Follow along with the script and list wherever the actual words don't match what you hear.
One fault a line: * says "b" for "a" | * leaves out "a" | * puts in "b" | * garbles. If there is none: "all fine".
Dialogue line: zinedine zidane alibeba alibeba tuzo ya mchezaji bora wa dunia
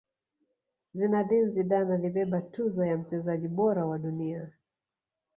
* leaves out "alibeba"